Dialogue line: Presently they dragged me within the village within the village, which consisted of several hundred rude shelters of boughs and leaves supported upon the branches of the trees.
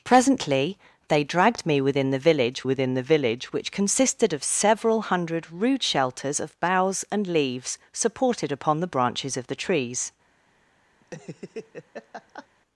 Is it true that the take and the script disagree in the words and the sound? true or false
true